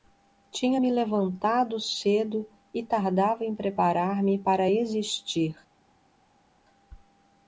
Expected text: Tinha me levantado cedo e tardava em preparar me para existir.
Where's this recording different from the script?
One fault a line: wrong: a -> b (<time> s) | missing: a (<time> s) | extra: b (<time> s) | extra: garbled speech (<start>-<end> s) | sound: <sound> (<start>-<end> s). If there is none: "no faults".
no faults